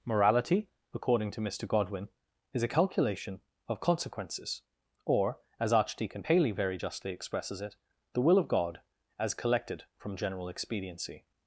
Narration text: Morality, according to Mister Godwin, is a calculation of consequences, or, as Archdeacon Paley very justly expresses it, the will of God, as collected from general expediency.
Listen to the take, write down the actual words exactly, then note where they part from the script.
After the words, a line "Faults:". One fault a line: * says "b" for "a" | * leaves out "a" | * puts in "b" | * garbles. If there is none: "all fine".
Morality, according to Mister Godwin, is a calculation of consequences, or, as Archdeacon Paley very justly expresses it, the will of God, as collected from general expediency.
Faults:
all fine